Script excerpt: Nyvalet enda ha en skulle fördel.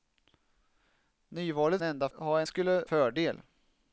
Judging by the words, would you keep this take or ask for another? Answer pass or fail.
pass